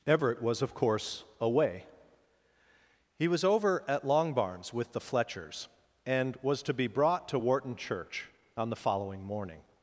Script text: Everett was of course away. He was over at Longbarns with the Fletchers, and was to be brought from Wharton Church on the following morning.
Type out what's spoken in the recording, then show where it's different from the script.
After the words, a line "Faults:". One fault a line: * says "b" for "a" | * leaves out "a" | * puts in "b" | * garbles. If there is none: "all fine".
Everett was of course away. He was over at Longbarns with the Fletchers, and was to be brought to Wharton Church on the following morning.
Faults:
* says "to" for "from"